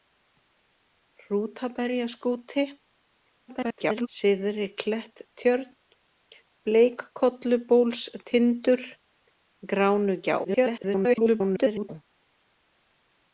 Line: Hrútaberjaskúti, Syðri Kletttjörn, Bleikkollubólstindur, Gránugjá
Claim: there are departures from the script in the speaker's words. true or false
true